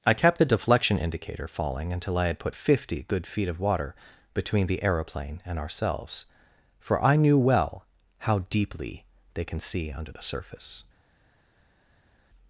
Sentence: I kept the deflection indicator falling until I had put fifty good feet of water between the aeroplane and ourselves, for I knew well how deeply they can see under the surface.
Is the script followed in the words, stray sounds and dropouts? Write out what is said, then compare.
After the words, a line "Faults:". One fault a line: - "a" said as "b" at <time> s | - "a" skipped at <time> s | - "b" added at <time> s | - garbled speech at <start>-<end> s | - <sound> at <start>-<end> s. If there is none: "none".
I kept the deflection indicator falling until I had put fifty good feet of water between the aeroplane and ourselves, for I knew well how deeply they can see under the surface.
Faults:
none